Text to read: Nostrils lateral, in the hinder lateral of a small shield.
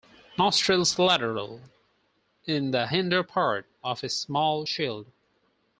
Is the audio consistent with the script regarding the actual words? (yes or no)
no